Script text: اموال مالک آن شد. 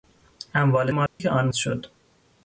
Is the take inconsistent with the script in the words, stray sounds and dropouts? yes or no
yes